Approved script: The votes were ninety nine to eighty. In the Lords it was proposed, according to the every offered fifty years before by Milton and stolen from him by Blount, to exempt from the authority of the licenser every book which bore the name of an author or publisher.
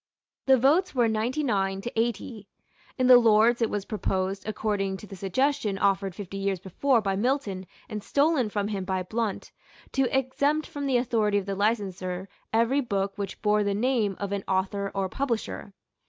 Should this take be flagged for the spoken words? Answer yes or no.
yes